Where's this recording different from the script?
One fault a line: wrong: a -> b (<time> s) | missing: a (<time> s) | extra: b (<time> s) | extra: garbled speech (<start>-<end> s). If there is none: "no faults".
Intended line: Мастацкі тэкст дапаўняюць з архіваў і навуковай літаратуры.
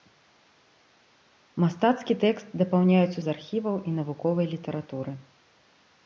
no faults